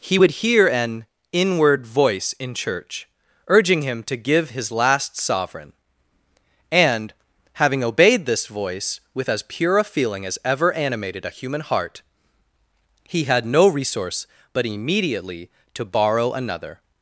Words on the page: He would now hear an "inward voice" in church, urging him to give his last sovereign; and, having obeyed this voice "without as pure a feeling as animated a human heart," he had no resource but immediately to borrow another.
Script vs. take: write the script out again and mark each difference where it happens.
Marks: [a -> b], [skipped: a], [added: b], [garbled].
He would [skipped: now] hear an "inward voice" in church, urging him to give his last sovereign; and, having obeyed this voice ["without -> with] as pure a feeling as [added: ever] animated a human heart," he had no resource but immediately to borrow another.